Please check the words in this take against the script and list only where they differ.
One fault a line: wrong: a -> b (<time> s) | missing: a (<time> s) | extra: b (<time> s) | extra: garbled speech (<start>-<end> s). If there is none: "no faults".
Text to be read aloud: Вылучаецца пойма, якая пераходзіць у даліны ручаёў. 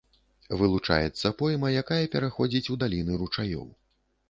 no faults